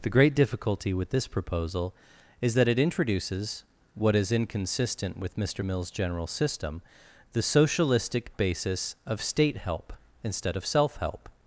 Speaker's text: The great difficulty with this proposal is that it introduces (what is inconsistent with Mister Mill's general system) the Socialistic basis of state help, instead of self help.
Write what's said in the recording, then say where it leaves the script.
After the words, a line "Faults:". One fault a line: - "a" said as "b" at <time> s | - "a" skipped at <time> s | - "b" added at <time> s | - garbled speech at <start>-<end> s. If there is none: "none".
The great difficulty with this proposal is that it introduces (what is inconsistent with Mister Mill's general system) the Socialistic basis of state help, instead of self help.
Faults:
none